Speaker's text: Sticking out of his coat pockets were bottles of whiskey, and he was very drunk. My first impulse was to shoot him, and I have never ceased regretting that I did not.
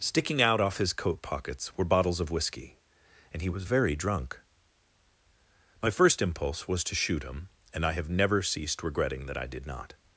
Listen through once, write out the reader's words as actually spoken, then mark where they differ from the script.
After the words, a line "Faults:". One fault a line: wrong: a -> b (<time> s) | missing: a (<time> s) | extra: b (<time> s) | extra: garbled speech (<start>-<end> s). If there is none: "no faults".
Sticking out off his coat pockets were bottles of whiskey, and he was very drunk. My first impulse was to shoot him, and I have never ceased regretting that I did not.
Faults:
wrong: of -> off (0.6 s)